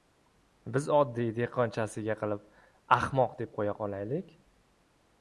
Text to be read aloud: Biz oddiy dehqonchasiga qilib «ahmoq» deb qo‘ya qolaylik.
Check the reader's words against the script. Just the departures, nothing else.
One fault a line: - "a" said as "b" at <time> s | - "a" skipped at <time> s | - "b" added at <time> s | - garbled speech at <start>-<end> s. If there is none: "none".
none